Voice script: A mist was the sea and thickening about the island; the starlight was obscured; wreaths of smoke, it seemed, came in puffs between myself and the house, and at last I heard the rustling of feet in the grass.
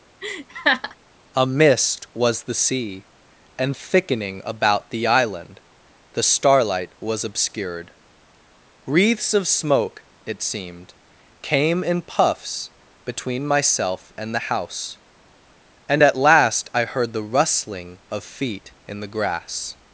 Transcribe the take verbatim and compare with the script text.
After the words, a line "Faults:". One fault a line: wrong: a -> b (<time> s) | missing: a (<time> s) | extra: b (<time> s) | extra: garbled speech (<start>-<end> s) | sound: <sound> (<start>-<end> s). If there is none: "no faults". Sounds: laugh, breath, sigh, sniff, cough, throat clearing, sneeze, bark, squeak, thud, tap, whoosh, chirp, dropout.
A mist was the sea and thickening about the island; the starlight was obscured; wreaths of smoke, it seemed, came in puffs between myself and the house, and at last I heard the rustling of feet in the grass.
Faults:
sound: laugh (0.2-1.0 s)